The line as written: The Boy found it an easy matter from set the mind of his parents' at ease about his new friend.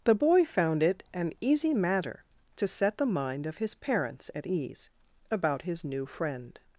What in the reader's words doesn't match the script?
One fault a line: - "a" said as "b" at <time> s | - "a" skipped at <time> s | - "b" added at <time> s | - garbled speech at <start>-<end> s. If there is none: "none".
- "from" said as "to" at 2.5 s